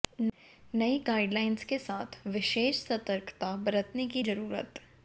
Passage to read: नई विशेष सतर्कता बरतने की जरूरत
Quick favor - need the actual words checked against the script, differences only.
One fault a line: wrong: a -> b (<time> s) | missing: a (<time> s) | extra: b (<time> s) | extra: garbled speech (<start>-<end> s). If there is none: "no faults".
extra: गाइडलाइंस के साथ (1.1 s)